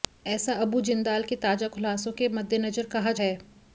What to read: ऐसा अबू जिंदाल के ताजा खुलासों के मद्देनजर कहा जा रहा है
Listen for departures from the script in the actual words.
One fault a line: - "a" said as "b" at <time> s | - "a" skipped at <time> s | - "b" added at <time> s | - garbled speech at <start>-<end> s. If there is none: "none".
- "जा रहा" skipped at 3.1 s